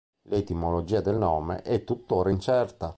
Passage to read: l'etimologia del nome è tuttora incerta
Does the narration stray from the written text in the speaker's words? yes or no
no